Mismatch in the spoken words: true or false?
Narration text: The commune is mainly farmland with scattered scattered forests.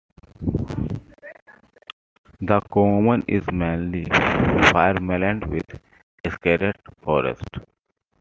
true